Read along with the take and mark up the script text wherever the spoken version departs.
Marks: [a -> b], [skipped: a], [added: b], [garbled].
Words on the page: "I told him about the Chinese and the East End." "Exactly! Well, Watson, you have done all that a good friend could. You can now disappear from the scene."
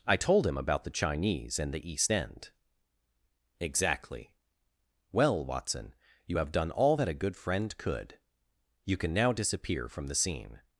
"I told him about the Chinese and the East End." "Exactly! Well, Watson, you have done all that a good friend could. You can now disappear from the scene."